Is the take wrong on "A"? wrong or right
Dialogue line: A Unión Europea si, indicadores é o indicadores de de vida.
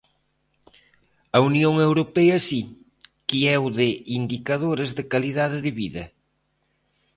right